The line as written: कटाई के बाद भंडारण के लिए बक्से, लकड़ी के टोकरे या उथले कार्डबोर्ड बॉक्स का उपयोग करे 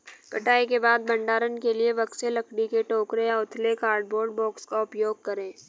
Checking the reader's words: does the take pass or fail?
pass